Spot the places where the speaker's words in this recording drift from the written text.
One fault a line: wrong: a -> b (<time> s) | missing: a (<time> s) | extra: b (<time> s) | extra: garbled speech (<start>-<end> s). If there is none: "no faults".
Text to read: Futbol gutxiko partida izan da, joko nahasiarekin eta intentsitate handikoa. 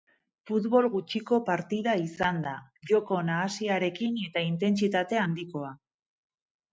no faults